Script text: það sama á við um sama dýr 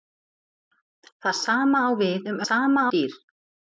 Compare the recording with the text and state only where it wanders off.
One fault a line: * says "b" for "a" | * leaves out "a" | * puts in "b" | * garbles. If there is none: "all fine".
all fine